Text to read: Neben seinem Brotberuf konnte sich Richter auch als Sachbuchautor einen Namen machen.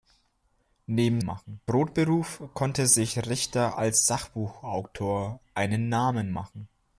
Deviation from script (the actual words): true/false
true